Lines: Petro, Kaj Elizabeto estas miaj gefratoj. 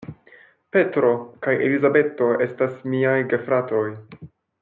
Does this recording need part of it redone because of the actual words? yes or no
no